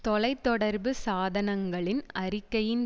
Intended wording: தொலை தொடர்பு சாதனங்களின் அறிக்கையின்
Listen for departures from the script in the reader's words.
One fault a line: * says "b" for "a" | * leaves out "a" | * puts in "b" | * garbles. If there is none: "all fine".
all fine